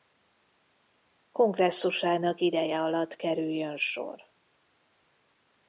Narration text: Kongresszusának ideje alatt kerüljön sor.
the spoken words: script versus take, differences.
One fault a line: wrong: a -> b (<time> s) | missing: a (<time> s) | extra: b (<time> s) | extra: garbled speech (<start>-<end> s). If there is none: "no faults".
no faults